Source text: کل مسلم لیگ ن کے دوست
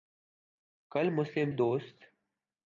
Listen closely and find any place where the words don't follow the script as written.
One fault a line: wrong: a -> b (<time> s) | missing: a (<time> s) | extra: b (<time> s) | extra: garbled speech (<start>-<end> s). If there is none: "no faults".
missing: لیگ ن کے (1.5 s)